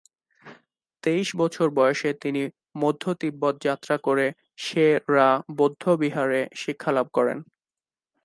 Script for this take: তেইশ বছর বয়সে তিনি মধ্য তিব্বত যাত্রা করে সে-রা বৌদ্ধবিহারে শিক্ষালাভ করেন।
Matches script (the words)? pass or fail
pass